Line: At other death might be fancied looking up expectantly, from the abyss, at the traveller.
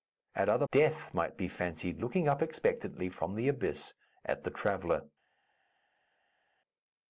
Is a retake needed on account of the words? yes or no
no